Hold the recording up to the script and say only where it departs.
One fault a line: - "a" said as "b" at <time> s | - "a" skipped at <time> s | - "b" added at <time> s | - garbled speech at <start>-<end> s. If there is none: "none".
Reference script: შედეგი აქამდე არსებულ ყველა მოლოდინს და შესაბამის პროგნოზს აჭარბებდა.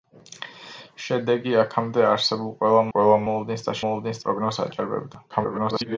- "ყველა" added at 2.9 s
- "შესაბამის" said as "მოლოდინს" at 3.8 s
- garbled speech at 5.3-6.0 s